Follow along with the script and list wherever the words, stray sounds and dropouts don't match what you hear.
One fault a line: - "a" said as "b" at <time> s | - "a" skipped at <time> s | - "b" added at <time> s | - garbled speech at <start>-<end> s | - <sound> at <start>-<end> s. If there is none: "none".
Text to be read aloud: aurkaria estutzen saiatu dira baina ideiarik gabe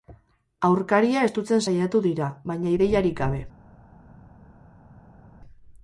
none